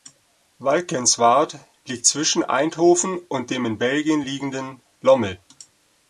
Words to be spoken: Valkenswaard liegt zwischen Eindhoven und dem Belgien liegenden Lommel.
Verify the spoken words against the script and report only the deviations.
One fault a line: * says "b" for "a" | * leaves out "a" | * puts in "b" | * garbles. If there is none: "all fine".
* puts in "in"